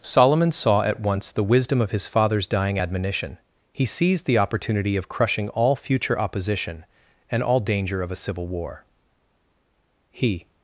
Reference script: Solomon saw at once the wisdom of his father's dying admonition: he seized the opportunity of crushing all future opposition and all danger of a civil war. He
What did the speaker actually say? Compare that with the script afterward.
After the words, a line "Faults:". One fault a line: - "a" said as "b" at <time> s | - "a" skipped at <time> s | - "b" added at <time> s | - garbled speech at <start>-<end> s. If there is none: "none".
Solomon saw at once the wisdom of his father's dying admonition: he seized the opportunity of crushing all future opposition and all danger of a civil war. He
Faults:
none